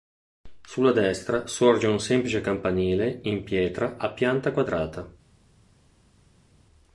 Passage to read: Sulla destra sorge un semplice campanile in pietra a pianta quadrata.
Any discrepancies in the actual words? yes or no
no